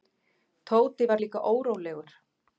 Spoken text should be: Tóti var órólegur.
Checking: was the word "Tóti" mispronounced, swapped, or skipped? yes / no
no